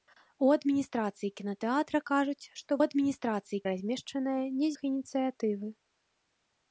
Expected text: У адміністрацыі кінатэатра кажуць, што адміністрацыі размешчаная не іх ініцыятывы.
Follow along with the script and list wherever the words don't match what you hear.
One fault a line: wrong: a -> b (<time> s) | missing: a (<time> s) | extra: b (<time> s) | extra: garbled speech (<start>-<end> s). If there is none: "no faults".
no faults